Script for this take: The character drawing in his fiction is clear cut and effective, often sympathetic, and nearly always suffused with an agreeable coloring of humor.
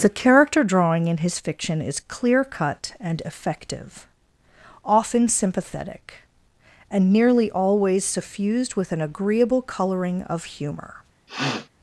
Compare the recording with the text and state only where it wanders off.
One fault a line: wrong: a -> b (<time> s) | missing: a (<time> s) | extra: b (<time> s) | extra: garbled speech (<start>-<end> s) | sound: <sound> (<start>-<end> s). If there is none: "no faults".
sound: sniff (11.3-11.7 s)